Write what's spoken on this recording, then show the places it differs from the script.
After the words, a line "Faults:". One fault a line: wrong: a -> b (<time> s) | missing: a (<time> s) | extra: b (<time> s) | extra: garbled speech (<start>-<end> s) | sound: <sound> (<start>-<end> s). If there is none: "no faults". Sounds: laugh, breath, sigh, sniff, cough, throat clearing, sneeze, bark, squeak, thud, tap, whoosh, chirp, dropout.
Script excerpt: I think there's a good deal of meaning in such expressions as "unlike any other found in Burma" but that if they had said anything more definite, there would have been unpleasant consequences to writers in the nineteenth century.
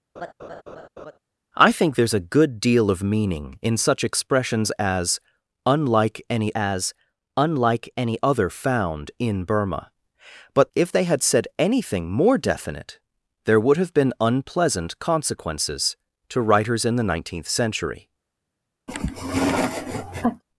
I think there's a good deal of meaning in such expressions as "unlike any as unlike any other found in Burma" but if they had said anything more definite, there would have been unpleasant consequences to writers in the nineteenth century.
Faults:
sound: laugh (0.2-1.2 s)
extra: as unlike any (6.5 s)
missing: that (10.7 s)
sound: sniff (18.9-20.4 s)